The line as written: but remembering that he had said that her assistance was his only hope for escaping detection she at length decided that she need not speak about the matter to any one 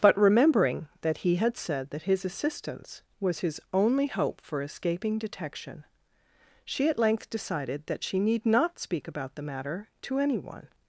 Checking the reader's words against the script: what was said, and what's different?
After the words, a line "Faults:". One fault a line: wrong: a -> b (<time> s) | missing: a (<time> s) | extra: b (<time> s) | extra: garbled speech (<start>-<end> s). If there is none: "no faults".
but remembering that he had said that his assistance was his only hope for escaping detection she at length decided that she need not speak about the matter to any one
Faults:
wrong: her -> his (2.0 s)